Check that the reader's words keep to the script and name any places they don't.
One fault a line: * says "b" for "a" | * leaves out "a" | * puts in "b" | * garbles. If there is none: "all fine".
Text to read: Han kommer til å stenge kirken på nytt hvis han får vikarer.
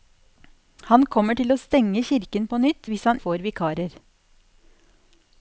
all fine